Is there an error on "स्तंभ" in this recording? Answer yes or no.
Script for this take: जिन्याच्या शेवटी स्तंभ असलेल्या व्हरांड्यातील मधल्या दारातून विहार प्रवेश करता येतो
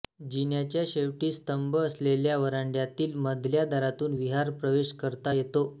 no